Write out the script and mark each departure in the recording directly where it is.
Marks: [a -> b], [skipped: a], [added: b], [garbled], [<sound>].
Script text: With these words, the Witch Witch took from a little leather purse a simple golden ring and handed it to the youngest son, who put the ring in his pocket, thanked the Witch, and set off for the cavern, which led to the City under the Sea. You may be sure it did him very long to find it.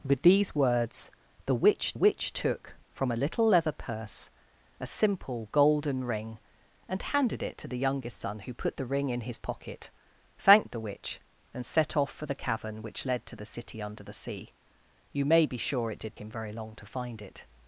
With these words, the Witch Witch took from a little leather purse a simple golden ring and handed it to the youngest son, who put the ring in his pocket, thanked the Witch, and set off for the cavern, which led to the City under the Sea. You may be sure it did him very long to find it.